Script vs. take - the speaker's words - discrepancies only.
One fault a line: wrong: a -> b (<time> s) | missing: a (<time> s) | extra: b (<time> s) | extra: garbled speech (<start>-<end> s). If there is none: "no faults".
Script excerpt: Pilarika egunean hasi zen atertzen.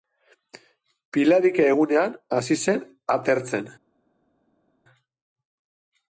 no faults